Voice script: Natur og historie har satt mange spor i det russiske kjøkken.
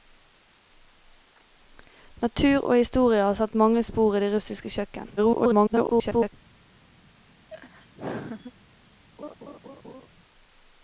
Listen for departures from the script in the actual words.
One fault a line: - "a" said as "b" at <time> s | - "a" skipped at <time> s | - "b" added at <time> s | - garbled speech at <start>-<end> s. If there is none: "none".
- garbled speech at 5.2-6.3 s